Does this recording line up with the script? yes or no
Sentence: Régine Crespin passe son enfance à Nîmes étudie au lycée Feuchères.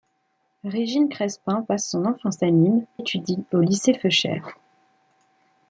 yes